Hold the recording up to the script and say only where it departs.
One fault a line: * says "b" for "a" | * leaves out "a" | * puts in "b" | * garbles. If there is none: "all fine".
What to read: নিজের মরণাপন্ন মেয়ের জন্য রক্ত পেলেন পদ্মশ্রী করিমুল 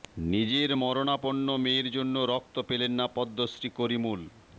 * puts in "না"